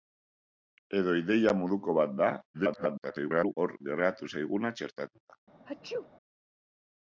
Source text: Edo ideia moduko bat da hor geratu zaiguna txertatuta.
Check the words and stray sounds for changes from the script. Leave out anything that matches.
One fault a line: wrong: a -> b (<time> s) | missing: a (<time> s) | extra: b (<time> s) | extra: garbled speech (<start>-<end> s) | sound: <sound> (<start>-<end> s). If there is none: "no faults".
extra: garbled speech (2.5-3.5 s)
sound: sneeze (5.7-6.1 s)